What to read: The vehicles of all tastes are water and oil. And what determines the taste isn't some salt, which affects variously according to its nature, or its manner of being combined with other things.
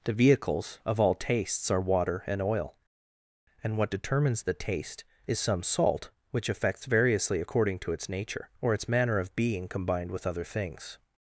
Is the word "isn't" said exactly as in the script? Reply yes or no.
no